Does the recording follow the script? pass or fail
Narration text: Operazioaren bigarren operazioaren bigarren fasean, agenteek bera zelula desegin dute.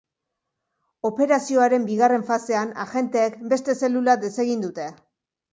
fail